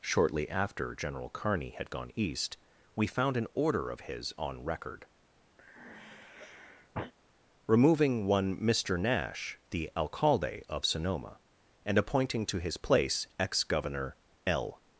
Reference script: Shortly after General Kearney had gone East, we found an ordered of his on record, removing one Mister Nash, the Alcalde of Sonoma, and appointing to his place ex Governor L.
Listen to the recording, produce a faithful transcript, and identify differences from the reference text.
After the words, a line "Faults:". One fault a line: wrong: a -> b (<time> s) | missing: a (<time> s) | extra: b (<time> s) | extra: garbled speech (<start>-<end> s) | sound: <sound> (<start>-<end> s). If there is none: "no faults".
Shortly after General Kearney had gone East, we found an order of his on record, removing one Mister Nash, the Alcalde of Sonoma, and appointing to his place ex Governor L.
Faults:
wrong: ordered -> order (3.5 s)
sound: sigh (5.6-7.1 s)